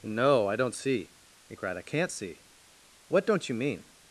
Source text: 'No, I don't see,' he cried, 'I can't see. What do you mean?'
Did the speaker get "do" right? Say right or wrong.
wrong